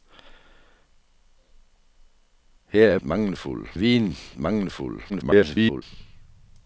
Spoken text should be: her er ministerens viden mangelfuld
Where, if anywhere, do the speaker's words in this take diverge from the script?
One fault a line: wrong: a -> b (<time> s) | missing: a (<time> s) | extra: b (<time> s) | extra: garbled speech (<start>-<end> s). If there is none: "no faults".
wrong: ministerens -> mangelfuld (3.0 s)
extra: garbled speech (5.1-5.8 s)